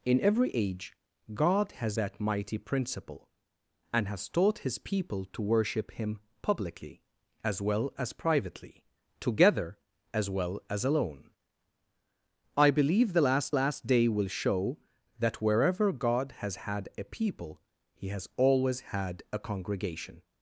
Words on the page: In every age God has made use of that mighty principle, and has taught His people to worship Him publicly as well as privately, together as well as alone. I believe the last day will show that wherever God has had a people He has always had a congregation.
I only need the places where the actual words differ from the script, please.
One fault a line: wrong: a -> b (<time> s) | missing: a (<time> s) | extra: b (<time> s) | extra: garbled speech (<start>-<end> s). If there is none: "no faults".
missing: made use of (2.0 s)
extra: last (13.5 s)